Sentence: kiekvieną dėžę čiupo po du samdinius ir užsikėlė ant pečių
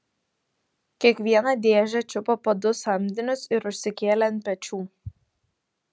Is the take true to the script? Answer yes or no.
yes